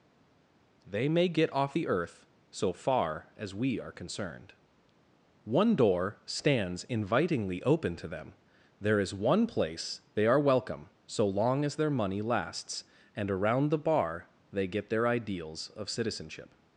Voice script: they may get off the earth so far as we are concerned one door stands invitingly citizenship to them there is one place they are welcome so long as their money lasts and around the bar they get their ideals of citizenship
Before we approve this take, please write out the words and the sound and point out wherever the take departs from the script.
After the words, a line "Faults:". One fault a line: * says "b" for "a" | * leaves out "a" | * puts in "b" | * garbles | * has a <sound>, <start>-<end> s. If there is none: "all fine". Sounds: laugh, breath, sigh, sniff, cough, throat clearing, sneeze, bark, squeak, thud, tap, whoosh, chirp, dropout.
they may get off the earth so far as we are concerned one door stands invitingly open to them there is one place they are welcome so long as their money lasts and around the bar they get their ideals of citizenship
Faults:
* says "open" for "citizenship"